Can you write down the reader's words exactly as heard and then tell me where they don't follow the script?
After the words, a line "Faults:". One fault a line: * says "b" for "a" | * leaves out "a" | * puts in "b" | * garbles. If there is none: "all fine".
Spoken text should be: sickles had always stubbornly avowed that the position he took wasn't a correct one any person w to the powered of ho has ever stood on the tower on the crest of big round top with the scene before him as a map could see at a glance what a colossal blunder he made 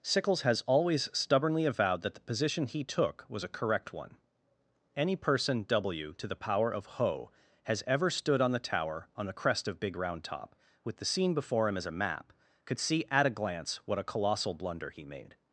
sickles has always stubbornly avowed that the position he took was a correct one any person w to the power of ho has ever stood on the tower on the crest of big round top with the scene before him as a map could see at a glance what a colossal blunder he made
Faults:
* says "has" for "had"
* says "was" for "wasn't"
* says "power" for "powered"